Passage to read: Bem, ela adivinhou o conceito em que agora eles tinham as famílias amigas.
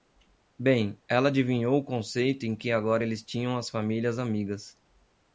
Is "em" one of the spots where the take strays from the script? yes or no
no